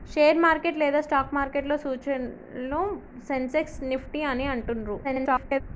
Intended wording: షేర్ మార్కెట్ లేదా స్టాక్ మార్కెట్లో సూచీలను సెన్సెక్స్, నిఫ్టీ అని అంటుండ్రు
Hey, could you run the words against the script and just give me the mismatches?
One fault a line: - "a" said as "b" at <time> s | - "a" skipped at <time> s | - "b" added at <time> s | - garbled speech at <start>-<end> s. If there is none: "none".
- garbled speech at 5.0-5.6 s